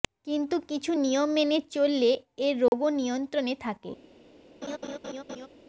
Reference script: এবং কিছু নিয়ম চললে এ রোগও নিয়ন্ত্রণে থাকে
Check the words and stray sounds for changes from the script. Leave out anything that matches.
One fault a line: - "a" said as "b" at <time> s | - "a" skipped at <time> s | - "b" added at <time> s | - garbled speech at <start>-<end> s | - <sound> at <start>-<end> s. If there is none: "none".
- "এবং" said as "কিন্তু" at 0.3 s
- "মেনে" added at 1.4 s
- dropout at 2.7-2.7 s
- laugh at 4.6-5.5 s